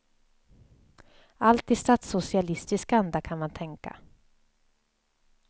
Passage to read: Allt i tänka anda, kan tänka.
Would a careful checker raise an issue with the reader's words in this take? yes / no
yes